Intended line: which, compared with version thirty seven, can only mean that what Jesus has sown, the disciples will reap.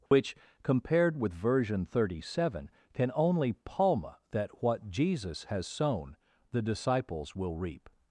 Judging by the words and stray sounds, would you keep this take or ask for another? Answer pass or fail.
fail